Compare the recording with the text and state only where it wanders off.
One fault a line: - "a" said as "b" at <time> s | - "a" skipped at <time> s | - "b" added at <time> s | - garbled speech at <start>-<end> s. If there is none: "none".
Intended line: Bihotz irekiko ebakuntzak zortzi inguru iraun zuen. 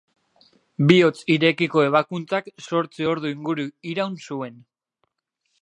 - "ordu" added at 3.1 s